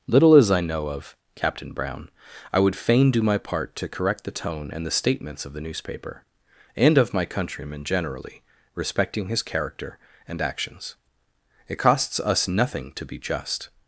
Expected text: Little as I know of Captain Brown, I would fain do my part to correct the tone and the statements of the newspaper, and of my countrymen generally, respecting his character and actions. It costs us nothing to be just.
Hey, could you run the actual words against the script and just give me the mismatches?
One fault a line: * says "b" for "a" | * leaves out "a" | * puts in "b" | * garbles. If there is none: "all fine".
all fine